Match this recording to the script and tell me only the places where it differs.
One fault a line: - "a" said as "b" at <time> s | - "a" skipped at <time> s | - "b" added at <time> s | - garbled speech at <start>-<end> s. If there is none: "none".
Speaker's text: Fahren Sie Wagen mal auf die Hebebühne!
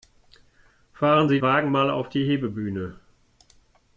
none